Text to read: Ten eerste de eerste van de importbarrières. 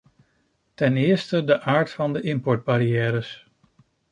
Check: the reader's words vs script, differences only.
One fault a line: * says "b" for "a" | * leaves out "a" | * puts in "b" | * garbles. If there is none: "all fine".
* says "aard" for "eerste"